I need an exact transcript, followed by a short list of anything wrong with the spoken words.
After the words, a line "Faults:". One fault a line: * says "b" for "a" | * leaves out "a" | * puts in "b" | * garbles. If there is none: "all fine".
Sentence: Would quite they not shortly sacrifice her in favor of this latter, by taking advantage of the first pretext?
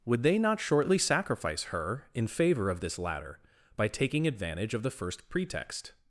Would they not shortly sacrifice her in favor of this latter, by taking advantage of the first pretext?
Faults:
* leaves out "quite"